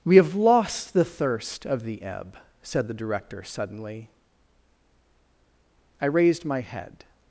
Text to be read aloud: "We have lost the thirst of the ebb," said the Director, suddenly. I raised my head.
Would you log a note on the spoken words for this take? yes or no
no